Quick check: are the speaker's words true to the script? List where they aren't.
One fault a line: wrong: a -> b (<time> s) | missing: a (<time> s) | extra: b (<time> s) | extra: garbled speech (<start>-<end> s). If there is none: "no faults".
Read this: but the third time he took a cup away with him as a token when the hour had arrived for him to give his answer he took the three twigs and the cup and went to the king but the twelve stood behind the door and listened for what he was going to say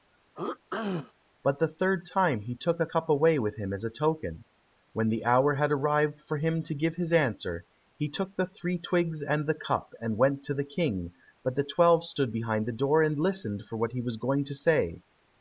no faults